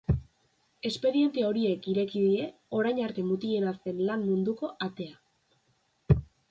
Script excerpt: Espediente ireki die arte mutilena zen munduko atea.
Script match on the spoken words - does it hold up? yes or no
no